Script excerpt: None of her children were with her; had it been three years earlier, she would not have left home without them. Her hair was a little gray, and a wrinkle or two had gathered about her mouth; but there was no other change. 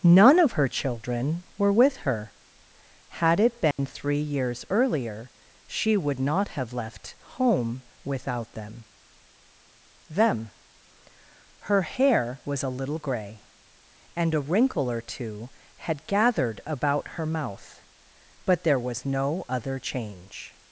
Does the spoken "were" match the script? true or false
true